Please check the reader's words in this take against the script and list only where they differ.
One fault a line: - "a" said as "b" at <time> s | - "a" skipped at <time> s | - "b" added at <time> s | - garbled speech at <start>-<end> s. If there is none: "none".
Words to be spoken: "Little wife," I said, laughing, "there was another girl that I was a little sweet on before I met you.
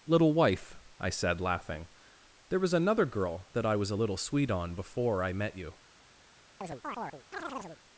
none